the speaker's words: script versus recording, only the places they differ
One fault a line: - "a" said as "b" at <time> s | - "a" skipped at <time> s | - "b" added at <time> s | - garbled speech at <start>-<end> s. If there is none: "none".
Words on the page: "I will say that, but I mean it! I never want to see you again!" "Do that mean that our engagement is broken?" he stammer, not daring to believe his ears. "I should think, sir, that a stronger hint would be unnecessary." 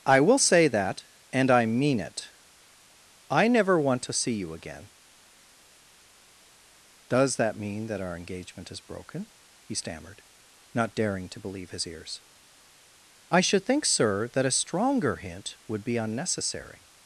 - "but" said as "and" at 1.3 s
- "Do" said as "Does" at 7.1 s
- "stammer" said as "stammered" at 9.8 s